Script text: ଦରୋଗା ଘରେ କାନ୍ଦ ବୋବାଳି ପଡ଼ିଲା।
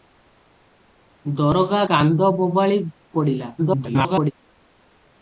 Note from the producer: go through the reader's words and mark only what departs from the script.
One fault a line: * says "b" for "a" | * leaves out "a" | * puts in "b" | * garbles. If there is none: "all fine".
* leaves out "ଘରେ"
* garbles